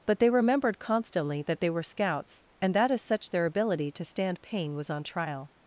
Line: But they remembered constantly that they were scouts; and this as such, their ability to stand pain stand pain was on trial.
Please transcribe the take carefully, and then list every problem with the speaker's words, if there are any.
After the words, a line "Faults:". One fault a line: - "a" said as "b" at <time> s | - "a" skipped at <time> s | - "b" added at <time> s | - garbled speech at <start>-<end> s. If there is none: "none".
But they remembered constantly that they were scouts; and that as such, their ability to stand pain was on trial.
Faults:
- "this" said as "that" at 2.7 s
- "stand pain" skipped at 4.7 s